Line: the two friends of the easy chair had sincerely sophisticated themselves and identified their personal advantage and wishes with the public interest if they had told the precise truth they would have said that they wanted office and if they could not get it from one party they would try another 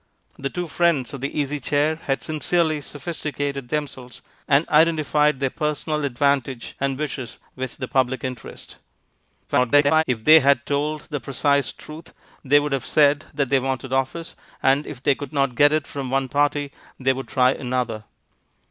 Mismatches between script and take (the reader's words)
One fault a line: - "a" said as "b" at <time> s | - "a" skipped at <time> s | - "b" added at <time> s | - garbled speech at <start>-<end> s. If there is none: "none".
- garbled speech at 9.5-10.0 s